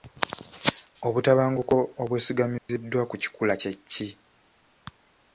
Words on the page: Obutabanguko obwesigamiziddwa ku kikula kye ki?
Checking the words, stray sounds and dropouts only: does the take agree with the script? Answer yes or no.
no